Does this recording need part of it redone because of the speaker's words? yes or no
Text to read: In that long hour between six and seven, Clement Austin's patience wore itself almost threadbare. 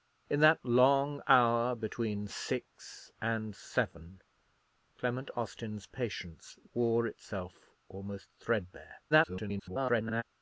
yes